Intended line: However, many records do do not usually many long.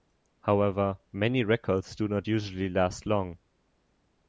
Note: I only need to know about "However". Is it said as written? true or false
true